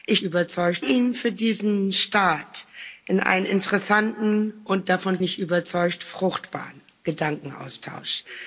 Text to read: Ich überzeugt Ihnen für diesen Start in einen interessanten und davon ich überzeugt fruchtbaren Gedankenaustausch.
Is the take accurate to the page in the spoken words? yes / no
yes